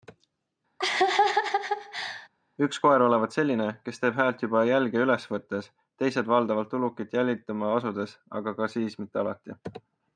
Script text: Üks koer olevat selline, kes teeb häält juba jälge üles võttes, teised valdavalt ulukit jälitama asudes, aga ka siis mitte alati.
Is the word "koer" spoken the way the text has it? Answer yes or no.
yes